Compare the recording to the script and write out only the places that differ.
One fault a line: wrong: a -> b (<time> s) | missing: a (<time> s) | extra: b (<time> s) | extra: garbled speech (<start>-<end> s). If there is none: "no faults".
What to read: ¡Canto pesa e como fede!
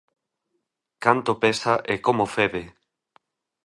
no faults